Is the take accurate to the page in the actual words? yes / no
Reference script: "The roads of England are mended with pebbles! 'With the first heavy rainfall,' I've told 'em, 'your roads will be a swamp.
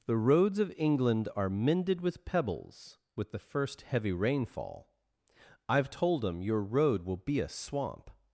no